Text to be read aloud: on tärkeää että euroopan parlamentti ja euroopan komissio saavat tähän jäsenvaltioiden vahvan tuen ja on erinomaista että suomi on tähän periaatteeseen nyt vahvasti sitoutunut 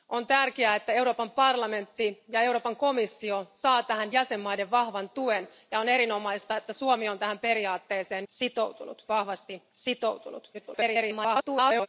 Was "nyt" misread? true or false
true